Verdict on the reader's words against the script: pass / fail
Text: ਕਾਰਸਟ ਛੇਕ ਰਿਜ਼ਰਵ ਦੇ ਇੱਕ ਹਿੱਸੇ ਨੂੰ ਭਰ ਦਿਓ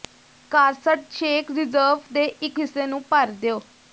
pass